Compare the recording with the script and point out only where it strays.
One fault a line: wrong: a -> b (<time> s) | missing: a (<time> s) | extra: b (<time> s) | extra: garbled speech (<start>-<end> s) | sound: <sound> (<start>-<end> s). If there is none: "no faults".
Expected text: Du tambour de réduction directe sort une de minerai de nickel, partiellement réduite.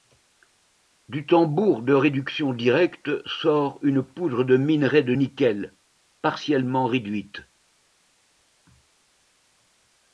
extra: poudre (4.0 s)